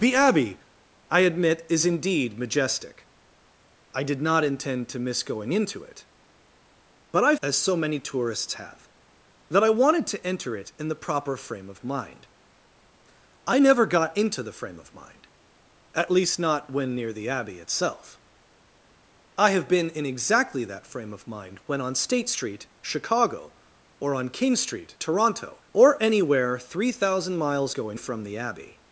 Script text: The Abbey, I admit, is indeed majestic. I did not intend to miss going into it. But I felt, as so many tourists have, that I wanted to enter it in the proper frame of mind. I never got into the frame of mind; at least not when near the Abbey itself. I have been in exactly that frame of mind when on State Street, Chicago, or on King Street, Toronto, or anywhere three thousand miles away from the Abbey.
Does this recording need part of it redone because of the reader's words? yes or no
yes